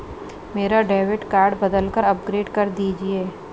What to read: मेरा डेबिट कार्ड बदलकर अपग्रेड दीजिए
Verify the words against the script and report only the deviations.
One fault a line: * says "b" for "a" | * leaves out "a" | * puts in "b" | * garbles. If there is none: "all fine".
* puts in "कर"